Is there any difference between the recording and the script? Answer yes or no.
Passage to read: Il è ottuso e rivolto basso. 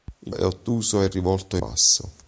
no